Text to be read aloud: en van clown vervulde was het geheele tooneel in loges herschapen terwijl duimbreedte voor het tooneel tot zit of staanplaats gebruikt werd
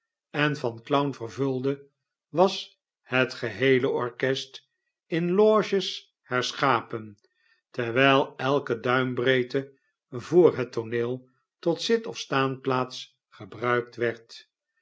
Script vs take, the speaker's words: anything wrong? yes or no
yes